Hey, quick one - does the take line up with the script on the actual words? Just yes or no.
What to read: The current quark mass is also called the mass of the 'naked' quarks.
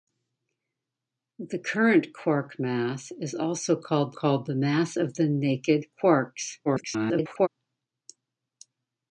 no